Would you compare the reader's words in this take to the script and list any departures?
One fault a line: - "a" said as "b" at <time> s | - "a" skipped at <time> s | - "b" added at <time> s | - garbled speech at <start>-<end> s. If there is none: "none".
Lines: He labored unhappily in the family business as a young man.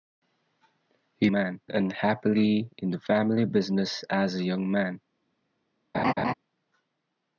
- "labored" said as "man" at 1.3 s